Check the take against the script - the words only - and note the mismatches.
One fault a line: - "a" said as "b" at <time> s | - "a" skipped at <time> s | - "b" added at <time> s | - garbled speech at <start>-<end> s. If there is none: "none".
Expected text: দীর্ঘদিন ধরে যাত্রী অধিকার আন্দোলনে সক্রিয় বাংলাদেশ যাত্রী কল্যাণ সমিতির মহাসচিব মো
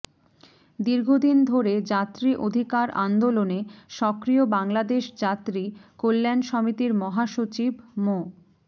none